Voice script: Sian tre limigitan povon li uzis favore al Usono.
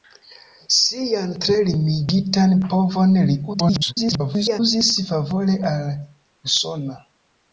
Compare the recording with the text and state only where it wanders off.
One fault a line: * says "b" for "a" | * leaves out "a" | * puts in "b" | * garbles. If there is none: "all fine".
* garbles